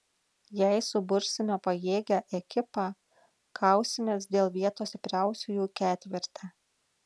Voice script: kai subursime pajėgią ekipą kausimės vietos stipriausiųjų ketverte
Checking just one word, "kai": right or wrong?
wrong